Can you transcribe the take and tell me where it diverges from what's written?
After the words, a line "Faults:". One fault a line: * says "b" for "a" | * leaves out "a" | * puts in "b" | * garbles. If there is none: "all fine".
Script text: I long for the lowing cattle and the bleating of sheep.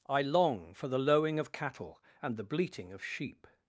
I long for the lowing of cattle and the bleating of sheep.
Faults:
* puts in "of"